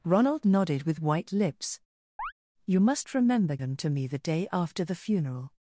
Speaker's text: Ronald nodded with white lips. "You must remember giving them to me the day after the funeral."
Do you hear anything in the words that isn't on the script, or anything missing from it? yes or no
yes